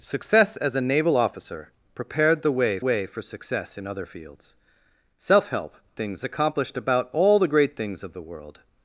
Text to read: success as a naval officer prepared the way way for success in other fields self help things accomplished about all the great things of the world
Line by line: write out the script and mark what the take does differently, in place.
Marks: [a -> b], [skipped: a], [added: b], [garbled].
success as a naval officer prepared the way way for success in other fields self help things accomplished about all the great things of the world